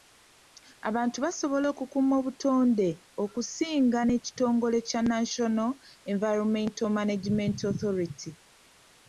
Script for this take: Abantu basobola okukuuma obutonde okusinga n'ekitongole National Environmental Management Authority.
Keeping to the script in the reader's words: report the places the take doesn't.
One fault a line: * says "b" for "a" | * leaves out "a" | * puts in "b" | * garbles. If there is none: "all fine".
* puts in "kya"